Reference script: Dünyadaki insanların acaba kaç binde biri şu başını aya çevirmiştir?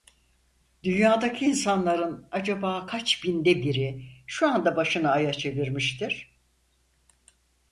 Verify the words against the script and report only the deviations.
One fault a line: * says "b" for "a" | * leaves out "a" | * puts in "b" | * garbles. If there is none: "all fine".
* puts in "anda"